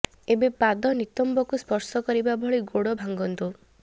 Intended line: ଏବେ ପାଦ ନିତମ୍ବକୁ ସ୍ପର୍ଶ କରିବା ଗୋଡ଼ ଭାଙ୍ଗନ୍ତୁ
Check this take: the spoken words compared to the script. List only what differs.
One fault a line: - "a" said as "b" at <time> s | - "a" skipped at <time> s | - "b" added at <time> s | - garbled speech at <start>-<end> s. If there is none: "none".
- "ଭଳି" added at 2.4 s